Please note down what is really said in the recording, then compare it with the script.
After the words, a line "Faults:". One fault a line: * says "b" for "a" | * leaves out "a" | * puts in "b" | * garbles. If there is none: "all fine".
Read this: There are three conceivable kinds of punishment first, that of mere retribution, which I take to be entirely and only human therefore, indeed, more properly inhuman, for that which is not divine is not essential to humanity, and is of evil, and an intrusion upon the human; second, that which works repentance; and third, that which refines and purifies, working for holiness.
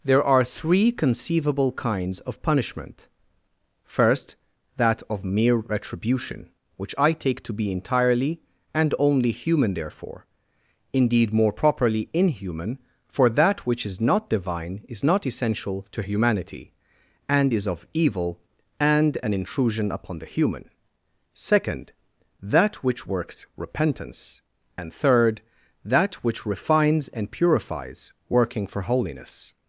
There are three conceivable kinds of punishment first, that of mere retribution, which I take to be entirely and only human therefore, indeed, more properly inhuman, for that which is not divine is not essential to humanity, and is of evil, and an intrusion upon the human; second, that which works repentance; and third, that which refines and purifies, working for holiness.
Faults:
all fine